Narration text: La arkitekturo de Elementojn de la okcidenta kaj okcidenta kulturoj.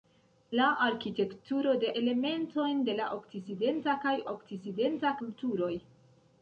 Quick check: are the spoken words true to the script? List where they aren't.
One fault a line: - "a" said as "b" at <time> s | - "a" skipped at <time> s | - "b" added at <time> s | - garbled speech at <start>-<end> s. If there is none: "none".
none